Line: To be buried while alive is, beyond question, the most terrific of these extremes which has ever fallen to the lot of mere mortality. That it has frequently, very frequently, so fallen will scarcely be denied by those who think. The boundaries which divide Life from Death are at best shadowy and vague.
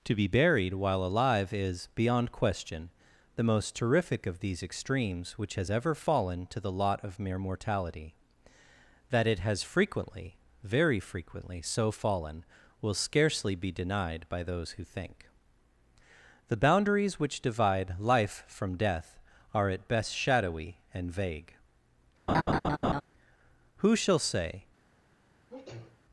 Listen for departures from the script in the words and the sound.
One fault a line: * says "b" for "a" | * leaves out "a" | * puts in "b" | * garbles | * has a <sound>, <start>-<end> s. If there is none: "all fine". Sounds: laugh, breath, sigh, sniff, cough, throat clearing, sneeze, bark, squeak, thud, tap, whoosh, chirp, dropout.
* has a laugh, 22.3-23.0 s
* puts in "Who shall say"
* has a sneeze, 25.5-26.0 s